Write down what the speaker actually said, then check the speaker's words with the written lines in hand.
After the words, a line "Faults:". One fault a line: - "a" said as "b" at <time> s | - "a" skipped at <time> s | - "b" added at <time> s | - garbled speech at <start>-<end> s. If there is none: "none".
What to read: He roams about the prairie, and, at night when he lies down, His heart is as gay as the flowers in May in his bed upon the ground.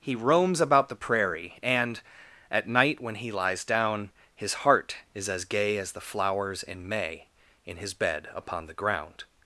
He roams about the prairie, and, at night when he lies down, His heart is as gay as the flowers in May in his bed upon the ground.
Faults:
none